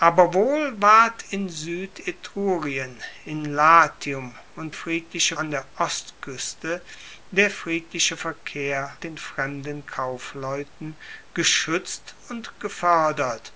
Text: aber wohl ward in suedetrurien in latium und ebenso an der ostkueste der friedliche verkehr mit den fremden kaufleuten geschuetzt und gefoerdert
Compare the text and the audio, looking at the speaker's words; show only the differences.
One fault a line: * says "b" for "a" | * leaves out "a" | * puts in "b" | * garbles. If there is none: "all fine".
* says "friedliche" for "ebenso"
* leaves out "mit"